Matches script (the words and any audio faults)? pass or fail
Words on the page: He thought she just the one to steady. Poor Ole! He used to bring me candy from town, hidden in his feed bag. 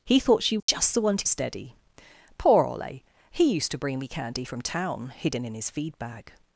fail